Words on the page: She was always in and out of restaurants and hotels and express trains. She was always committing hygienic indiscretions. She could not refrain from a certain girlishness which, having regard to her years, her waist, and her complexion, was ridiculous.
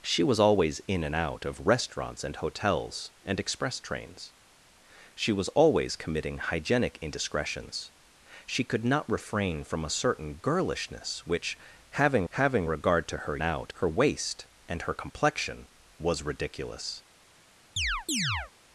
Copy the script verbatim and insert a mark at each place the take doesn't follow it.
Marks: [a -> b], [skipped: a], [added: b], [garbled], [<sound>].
She was always in and out of restaurants and hotels and express trains. She was always committing hygienic indiscretions. She could not refrain from a certain girlishness which, having [added: having] regard to her [years, -> out] her waist, and her complexion, was ridiculous. [chirp]